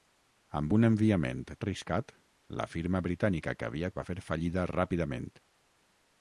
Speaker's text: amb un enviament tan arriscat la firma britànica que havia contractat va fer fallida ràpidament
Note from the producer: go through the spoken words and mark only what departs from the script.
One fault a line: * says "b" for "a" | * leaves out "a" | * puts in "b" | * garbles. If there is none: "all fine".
* leaves out "tan"
* leaves out "contractat"